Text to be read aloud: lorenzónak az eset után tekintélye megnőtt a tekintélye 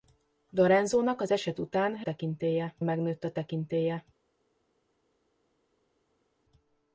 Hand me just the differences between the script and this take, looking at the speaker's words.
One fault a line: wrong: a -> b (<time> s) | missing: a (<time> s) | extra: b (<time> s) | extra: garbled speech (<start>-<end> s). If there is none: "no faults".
no faults